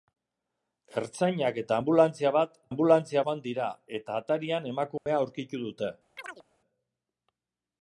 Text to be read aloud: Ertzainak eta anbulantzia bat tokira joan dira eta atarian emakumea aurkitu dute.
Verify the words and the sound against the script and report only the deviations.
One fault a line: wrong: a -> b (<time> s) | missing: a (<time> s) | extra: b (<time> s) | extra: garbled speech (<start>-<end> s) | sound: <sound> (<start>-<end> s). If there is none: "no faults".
wrong: tokira -> anbulantzia (2.7 s)
sound: dropout (5.0-5.1 s)
sound: chirp (6.2-6.4 s)